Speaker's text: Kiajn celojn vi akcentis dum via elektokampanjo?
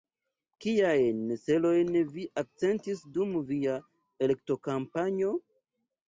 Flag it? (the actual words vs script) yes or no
no